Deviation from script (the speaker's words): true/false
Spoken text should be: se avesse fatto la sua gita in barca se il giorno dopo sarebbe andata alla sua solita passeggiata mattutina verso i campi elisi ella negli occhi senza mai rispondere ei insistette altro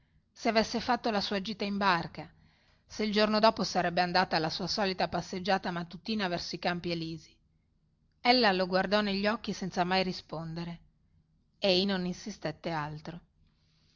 true